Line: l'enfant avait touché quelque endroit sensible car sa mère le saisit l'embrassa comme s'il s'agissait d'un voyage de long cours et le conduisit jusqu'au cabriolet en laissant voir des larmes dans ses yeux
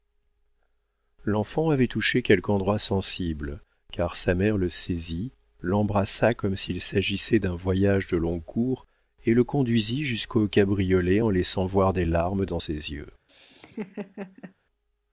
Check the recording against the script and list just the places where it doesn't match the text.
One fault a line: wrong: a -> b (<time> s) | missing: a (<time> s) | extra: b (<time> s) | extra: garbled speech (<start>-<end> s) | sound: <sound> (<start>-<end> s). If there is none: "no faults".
sound: laugh (13.3-14.5 s)